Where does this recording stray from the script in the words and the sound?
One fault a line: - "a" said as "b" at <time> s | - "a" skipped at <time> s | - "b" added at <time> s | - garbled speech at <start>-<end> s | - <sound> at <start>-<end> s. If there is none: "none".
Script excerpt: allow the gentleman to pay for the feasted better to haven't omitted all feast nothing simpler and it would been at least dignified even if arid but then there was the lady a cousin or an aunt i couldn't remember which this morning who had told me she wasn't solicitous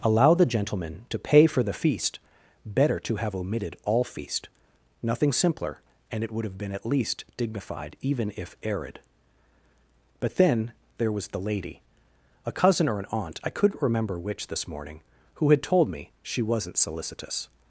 - "feasted" said as "feast" at 1.7 s
- "haven't" said as "have" at 3.2 s
- "have" added at 6.4 s